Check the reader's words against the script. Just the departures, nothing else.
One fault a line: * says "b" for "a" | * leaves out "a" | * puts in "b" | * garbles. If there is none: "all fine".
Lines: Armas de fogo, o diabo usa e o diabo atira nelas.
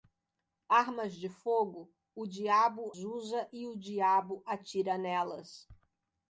all fine